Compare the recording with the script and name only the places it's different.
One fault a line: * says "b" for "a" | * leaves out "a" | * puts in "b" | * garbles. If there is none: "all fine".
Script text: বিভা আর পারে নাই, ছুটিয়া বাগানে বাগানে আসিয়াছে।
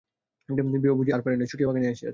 * puts in "বুঝি"
* leaves out "বাগানে"